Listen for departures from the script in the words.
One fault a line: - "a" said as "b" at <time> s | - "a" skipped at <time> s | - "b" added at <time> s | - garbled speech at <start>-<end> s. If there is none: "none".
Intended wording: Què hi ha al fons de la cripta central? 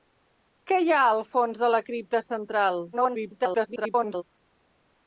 - garbled speech at 2.9-4.2 s